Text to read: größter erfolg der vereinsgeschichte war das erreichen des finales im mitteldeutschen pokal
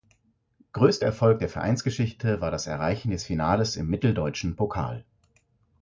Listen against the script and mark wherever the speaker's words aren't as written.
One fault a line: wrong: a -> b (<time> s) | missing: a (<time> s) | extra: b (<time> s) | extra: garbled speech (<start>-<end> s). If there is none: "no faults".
no faults